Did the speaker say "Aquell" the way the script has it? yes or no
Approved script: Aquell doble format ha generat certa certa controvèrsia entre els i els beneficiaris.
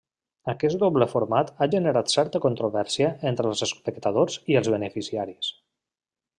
no